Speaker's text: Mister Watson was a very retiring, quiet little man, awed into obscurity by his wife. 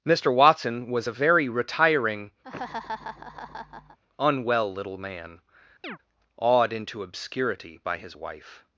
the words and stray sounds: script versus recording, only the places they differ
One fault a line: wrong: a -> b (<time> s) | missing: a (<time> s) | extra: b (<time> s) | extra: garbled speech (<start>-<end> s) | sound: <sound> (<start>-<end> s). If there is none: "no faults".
sound: laugh (2.4-4.0 s)
wrong: quiet -> unwell (4.2 s)
sound: chirp (5.8-6.0 s)